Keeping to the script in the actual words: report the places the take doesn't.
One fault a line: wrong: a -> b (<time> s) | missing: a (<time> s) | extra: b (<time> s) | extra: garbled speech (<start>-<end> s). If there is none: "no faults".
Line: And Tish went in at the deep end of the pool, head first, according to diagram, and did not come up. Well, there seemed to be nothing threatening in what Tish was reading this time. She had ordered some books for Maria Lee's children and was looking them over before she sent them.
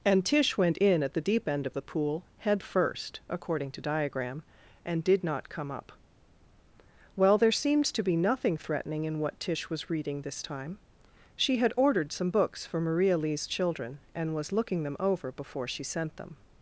no faults